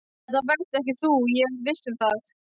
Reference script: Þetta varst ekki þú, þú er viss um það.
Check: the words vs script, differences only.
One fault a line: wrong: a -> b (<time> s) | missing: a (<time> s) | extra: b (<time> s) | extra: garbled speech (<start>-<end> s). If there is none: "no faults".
wrong: þú -> ég (1.4 s)